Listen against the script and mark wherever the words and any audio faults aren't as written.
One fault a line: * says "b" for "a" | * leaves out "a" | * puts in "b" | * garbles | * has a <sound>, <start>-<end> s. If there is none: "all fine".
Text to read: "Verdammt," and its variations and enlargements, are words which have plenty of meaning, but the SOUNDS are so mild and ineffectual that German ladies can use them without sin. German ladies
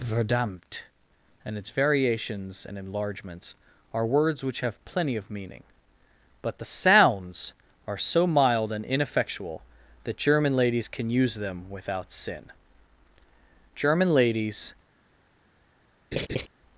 * has a laugh, 16.1-16.5 s